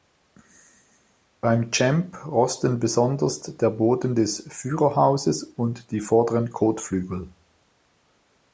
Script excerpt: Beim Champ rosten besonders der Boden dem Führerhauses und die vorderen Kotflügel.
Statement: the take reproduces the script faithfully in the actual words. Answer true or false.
false